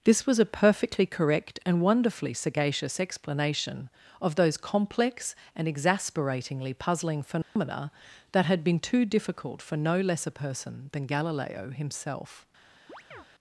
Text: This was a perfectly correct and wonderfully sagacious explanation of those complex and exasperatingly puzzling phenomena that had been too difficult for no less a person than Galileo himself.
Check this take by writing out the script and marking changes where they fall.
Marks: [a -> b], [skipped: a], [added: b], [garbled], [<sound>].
This was a perfectly correct and wonderfully sagacious explanation of those complex and exasperatingly puzzling phenomena [dropout] that had been too difficult for no less a person than Galileo himself. [chirp]